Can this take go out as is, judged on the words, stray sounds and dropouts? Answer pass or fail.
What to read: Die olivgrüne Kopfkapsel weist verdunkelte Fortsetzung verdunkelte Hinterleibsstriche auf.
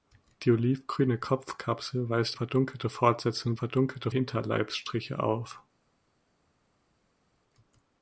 pass